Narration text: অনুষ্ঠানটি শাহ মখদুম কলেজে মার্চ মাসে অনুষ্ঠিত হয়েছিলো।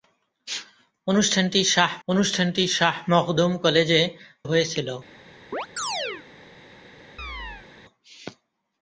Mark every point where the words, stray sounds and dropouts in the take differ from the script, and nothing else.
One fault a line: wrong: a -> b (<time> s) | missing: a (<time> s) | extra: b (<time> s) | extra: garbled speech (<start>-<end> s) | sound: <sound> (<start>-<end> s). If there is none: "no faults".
extra: অনুষ্ঠানটি শাহ (2.1 s)
missing: মার্চ মাসে অনুষ্ঠিত (4.0 s)
sound: chirp (5.5-6.3 s)
sound: chirp (7.2-7.7 s)